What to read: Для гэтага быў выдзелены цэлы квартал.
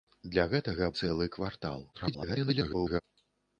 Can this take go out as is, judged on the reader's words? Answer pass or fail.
fail